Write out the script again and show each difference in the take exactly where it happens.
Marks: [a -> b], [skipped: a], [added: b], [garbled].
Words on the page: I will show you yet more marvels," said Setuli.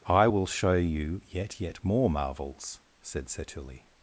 I will show you yet [added: yet] more marvels," said Setuli.